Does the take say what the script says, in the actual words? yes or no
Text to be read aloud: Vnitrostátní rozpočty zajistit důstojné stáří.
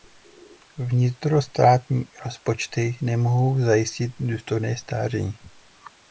no